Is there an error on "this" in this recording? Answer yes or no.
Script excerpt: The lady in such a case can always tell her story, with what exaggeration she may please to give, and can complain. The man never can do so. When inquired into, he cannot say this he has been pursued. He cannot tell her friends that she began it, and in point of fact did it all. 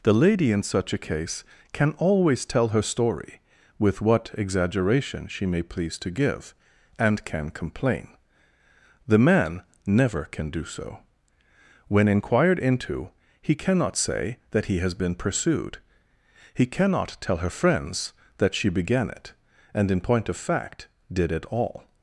yes